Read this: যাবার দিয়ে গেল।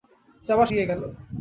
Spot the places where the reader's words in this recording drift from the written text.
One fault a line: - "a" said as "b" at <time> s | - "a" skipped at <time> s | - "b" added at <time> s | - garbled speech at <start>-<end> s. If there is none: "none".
none